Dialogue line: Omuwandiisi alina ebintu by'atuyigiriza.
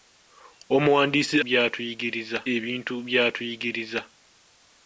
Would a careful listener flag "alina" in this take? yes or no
yes